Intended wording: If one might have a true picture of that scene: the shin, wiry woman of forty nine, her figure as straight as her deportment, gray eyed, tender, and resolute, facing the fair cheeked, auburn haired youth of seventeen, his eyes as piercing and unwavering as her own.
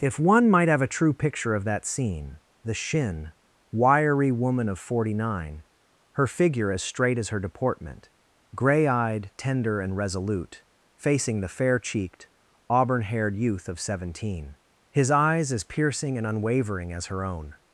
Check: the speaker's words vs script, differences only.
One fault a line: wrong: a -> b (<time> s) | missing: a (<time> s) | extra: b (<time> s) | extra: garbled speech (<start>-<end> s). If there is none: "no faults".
no faults